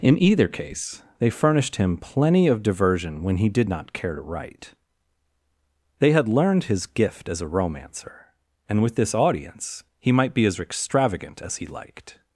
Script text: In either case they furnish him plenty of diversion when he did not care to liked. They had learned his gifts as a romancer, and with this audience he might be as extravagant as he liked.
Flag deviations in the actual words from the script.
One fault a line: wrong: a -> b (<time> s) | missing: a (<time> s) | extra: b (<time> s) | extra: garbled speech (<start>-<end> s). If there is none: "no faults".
wrong: furnish -> furnished (1.3 s)
wrong: liked -> write (4.2 s)
wrong: gifts -> gift (6.9 s)